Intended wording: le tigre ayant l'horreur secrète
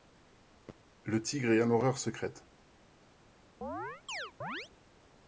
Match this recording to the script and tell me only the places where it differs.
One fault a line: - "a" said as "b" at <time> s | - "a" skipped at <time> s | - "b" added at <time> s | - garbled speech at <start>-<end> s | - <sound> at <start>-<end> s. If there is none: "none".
- chirp at 3.6-4.7 s